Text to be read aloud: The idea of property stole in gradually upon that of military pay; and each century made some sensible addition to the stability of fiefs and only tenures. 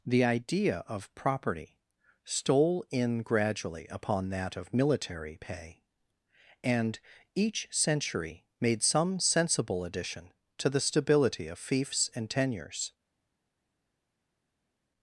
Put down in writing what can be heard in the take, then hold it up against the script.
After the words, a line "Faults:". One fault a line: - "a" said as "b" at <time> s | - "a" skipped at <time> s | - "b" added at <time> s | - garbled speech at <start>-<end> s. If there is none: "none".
The idea of property stole in gradually upon that of military pay; and each century made some sensible addition to the stability of fiefs and tenures.
Faults:
- "only" skipped at 12.3 s